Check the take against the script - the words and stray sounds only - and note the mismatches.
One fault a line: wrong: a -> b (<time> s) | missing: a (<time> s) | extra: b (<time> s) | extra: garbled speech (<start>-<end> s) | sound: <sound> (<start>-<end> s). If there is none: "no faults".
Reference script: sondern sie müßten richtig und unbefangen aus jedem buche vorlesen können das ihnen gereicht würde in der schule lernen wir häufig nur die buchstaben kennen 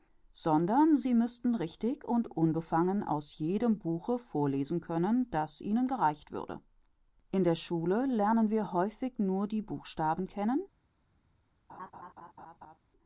sound: laugh (11.7-12.8 s)